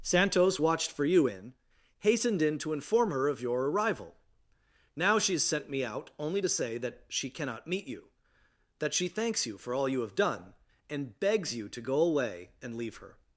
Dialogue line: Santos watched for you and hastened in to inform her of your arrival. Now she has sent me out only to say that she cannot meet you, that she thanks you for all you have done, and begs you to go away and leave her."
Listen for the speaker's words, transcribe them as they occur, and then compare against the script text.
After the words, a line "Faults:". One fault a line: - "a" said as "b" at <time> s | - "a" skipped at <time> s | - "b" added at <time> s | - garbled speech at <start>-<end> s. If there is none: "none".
Santos watched for you in hastened in to inform her of your arrival. Now she has sent me out only to say that she cannot meet you, that she thanks you for all you have done, and begs you to go away and leave her."
Faults:
- "and" said as "in" at 1.3 s